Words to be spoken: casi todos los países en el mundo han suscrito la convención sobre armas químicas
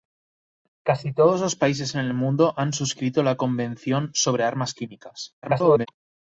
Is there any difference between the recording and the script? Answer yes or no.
yes